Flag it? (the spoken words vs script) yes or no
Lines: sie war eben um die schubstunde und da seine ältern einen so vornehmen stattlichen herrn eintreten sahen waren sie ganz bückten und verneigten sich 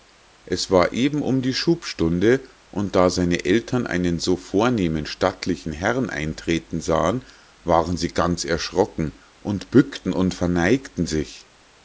yes